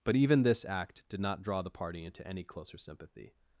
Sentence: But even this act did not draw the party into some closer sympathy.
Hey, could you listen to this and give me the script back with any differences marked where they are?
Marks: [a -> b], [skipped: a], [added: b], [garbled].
But even this act did not draw the party into [some -> any] closer sympathy.